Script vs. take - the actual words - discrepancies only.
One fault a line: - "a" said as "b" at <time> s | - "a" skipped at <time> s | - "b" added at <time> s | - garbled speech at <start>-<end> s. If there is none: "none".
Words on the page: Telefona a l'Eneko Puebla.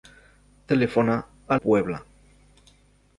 - "l'Eneko" skipped at 1.6 s